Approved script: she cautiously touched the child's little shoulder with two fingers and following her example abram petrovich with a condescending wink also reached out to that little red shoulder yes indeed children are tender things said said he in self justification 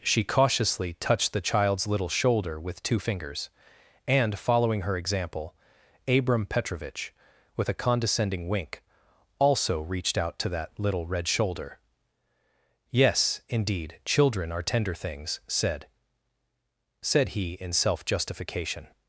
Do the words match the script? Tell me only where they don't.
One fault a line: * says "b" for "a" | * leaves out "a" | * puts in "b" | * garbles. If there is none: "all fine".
all fine